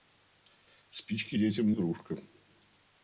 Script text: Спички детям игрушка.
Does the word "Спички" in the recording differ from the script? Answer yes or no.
no